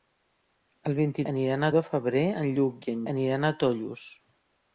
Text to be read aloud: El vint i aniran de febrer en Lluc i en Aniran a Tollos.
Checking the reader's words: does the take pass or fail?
pass